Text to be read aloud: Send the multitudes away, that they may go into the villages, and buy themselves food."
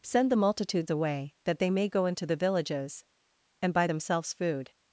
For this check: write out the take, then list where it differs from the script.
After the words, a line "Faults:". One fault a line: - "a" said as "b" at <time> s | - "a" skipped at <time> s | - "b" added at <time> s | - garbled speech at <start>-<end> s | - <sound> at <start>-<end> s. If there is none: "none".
Send the multitudes away, that they may go into the villages, and buy themselves food."
Faults:
none